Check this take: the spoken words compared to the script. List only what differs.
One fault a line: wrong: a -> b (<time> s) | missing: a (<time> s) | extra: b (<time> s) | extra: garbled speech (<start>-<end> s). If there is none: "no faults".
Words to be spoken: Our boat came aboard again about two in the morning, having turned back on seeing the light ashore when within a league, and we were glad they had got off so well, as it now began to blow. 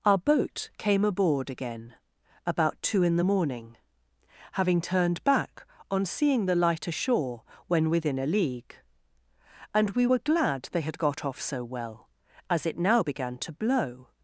no faults